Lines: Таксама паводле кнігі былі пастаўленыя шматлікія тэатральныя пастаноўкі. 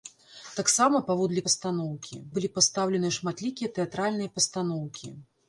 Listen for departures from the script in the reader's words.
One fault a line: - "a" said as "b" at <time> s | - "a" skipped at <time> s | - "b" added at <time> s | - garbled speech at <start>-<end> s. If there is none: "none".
- "кнігі" said as "пастаноўкі" at 1.5 s